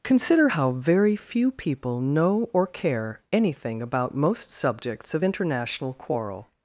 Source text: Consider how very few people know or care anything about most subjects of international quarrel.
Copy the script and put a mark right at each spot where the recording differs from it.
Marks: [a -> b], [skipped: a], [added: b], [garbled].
Consider how very few people know or care anything about most subjects of international quarrel.